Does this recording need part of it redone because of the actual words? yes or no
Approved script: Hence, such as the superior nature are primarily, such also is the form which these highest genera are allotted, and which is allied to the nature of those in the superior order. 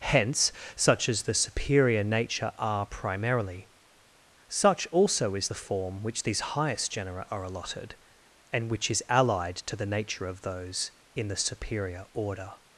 no